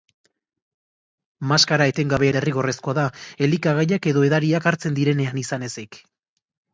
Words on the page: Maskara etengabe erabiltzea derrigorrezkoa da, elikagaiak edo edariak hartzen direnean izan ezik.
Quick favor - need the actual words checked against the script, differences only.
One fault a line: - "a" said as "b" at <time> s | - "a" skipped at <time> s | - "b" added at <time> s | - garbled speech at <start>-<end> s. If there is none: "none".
- "erabiltzea" skipped at 2.3 s